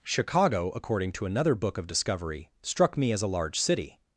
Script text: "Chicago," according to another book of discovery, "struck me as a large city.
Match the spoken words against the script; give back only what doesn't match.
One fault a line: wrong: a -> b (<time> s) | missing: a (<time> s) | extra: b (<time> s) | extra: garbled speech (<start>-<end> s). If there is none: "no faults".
no faults